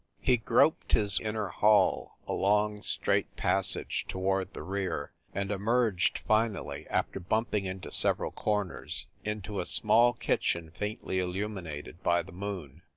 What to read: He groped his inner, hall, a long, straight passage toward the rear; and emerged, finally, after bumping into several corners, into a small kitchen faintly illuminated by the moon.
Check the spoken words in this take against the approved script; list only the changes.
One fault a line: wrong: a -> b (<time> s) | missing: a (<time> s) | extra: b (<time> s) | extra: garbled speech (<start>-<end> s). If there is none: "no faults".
no faults